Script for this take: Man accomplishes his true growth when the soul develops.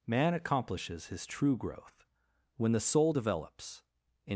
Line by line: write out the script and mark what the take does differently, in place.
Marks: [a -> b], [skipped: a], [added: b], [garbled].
Man accomplishes his true growth when the soul develops.